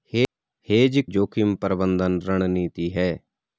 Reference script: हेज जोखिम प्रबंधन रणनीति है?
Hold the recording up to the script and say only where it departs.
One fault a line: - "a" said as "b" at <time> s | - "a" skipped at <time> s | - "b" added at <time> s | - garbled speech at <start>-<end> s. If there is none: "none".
none